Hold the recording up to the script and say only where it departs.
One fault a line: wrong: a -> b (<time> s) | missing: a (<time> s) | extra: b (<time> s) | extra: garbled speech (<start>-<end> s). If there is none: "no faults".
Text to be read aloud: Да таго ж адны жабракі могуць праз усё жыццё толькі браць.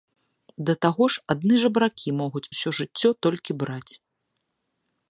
missing: праз (2.4 s)